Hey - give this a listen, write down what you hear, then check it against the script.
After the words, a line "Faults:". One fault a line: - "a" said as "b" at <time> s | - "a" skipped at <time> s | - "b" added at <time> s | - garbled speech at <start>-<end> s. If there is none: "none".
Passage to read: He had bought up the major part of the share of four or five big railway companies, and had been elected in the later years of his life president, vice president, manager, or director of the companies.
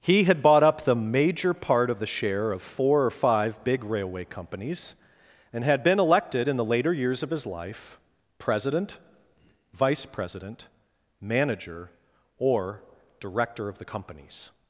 He had bought up the major part of the share of four or five big railway companies, and had been elected in the later years of his life president, vice president, manager, or director of the companies.
Faults:
none